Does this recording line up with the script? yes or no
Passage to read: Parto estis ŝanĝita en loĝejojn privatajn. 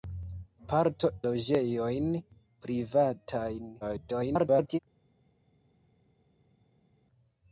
no